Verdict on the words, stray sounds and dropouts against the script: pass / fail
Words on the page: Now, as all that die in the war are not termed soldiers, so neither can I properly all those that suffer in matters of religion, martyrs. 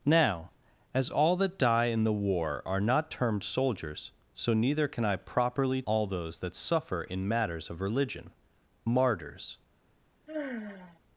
fail